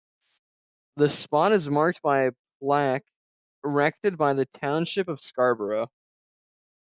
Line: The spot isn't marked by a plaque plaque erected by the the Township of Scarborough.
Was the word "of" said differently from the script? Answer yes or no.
no